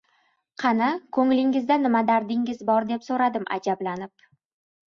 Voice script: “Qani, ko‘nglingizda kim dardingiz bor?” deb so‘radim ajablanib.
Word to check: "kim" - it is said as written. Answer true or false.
false